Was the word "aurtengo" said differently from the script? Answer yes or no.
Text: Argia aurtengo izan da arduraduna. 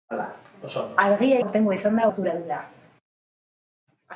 no